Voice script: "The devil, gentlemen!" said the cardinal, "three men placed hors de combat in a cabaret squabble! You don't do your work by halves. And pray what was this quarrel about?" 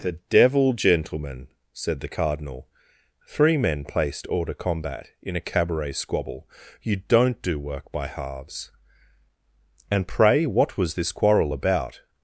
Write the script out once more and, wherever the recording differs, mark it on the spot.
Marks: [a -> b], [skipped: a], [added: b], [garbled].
"The devil, gentlemen!" said the cardinal, "three men placed hors de combat in a cabaret squabble! You don't do [skipped: your] work by halves. And pray what was this quarrel about?"